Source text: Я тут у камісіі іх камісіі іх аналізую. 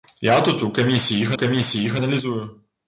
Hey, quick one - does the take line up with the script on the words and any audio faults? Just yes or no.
yes